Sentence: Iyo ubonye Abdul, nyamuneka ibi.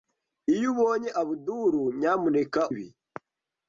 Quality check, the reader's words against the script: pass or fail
pass